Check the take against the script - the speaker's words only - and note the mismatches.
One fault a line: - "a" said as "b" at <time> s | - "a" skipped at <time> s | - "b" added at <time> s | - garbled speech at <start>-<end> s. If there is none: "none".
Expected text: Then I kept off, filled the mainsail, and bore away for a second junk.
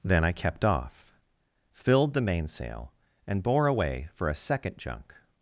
none